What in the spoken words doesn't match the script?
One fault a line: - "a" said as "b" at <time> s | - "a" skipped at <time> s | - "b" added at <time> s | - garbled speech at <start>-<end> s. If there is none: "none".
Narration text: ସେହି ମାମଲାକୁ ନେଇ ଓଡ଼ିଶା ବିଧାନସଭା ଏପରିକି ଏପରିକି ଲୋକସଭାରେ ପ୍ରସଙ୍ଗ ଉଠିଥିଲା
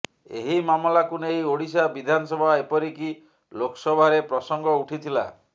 - "ସେହି" said as "ଏହି" at 0.4 s
- "ଏପରିକି" skipped at 3.1 s